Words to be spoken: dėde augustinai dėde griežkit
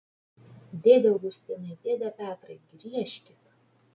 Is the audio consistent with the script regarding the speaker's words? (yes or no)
no